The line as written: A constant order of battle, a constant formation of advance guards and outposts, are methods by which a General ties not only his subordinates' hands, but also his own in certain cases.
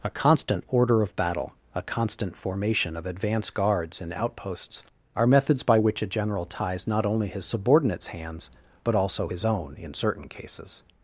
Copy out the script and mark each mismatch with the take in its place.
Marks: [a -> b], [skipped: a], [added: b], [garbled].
A constant order of battle, a constant formation of advance guards and outposts, are methods by which a General ties not only his subordinates' hands, but also his own in certain cases.